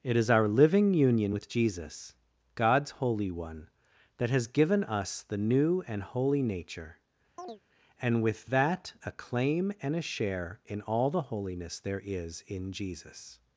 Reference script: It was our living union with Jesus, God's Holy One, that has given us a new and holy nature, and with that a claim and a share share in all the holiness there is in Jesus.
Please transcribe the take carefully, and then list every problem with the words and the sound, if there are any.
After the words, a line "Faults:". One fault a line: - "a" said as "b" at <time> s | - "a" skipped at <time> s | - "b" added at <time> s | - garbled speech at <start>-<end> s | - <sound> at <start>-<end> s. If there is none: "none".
It is our living union with Jesus, God's Holy One, that has given us the new and holy nature, and with that a claim and a share in all the holiness there is in Jesus.
Faults:
- "was" said as "is" at 0.1 s
- "a" said as "the" at 5.2 s
- chirp at 7.4-7.6 s
- "share" skipped at 10.6 s